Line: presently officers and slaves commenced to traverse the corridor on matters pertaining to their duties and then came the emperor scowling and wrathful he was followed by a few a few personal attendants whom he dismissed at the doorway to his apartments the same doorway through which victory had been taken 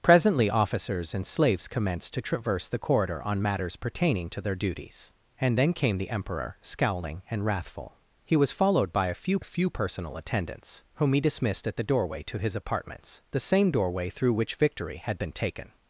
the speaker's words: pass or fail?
pass